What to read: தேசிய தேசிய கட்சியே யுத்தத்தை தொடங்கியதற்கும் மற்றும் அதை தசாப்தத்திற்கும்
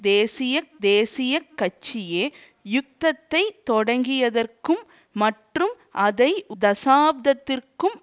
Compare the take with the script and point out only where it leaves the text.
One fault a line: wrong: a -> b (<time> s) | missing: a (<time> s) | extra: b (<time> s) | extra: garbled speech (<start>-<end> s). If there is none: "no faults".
no faults